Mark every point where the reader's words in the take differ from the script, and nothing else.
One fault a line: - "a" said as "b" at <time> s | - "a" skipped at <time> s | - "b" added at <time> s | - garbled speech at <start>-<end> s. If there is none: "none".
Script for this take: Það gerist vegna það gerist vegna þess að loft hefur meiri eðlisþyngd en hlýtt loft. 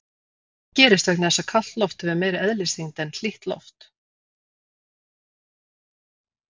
- "það gerist vegna" skipped at 1.3 s
- "kalt" added at 1.5 s